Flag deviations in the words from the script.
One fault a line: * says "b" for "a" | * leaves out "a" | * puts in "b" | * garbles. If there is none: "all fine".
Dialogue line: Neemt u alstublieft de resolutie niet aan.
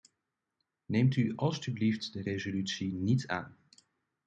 all fine